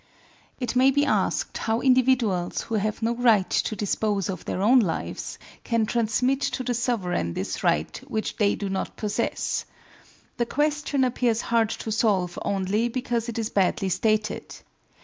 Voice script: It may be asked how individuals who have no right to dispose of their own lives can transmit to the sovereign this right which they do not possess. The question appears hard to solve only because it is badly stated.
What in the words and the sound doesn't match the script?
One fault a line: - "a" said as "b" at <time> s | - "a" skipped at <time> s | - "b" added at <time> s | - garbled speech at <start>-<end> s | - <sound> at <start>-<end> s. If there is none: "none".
none